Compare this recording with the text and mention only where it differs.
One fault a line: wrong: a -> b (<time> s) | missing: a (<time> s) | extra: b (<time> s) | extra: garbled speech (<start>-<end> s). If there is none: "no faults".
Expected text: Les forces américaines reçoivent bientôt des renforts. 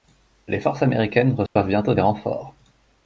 no faults